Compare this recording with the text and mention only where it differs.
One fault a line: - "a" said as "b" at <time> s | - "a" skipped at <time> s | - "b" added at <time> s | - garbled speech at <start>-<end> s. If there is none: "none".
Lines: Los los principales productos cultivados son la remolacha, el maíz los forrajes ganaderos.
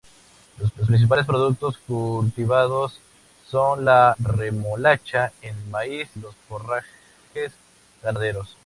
none